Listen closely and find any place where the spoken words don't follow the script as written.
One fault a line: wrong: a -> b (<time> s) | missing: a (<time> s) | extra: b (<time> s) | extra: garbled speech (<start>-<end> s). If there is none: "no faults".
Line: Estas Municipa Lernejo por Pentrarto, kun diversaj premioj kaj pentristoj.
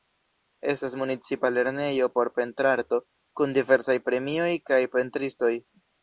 no faults